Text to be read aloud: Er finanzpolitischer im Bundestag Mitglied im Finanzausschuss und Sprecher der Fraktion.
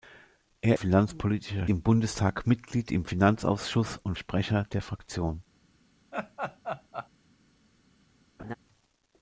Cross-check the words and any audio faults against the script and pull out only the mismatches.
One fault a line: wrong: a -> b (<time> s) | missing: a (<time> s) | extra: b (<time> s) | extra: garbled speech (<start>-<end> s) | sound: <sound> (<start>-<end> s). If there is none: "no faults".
sound: laugh (6.1-7.1 s)
sound: laugh (8.4-8.5 s)